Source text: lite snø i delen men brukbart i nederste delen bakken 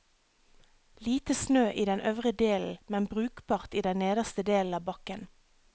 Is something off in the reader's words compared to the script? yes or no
yes